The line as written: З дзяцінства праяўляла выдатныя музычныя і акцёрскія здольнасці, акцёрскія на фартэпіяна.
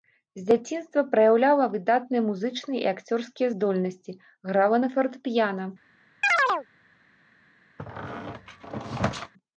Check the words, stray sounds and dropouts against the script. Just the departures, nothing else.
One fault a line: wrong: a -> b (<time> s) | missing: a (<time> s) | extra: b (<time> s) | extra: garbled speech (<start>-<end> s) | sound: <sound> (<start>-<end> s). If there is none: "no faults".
wrong: акцёрскія -> грала (4.5 s)
sound: chirp (6.2-6.7 s)
sound: squeak (7.8-9.3 s)